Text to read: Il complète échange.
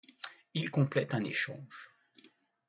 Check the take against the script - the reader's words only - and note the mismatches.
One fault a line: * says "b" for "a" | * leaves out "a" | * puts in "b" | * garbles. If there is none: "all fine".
* puts in "un"